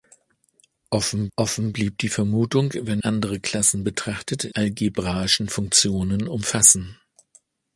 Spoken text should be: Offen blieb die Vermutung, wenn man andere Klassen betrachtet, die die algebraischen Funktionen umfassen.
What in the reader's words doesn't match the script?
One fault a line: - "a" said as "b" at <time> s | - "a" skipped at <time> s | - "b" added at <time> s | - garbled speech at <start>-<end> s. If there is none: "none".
- "offen" added at 1.3 s
- "man" skipped at 3.0 s
- "die die" skipped at 4.5 s